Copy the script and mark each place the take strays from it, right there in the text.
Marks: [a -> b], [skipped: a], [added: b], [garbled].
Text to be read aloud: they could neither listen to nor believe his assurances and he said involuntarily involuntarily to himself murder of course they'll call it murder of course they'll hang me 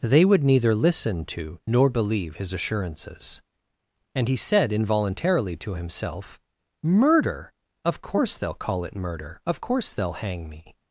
they [could -> would] neither listen to nor believe his assurances and he said involuntarily [skipped: involuntarily] to himself murder of course they'll call it murder of course they'll hang me